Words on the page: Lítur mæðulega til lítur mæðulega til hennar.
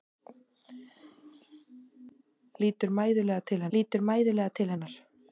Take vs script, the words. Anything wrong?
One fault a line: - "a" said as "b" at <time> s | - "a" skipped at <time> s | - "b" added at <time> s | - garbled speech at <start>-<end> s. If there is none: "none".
none